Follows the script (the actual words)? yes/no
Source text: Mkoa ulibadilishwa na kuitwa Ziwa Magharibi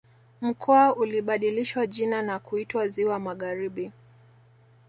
no